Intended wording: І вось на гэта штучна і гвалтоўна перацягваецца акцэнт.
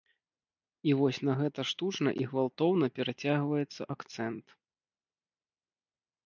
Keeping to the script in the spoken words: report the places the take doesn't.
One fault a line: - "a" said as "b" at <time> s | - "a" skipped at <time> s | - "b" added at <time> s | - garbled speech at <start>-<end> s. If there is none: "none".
none